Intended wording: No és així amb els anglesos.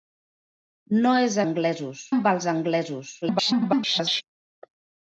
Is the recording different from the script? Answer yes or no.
yes